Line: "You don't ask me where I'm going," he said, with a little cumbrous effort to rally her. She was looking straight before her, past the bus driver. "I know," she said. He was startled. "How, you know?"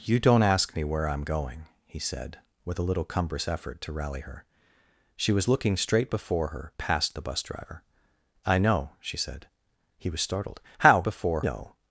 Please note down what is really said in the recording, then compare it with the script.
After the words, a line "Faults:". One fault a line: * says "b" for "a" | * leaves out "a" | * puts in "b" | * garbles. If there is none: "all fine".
"You don't ask me where I'm going," he said, with a little cumbrous effort to rally her. She was looking straight before her, past the bus driver. "I know," she said. He was startled. "How, before know?"
Faults:
* says "before" for "you"